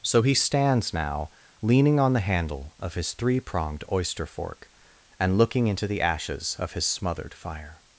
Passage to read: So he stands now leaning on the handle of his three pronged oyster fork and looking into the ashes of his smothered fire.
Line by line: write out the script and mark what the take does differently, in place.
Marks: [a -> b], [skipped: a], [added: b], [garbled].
So he stands now leaning on the handle of his three pronged oyster fork and looking into the ashes of his smothered fire.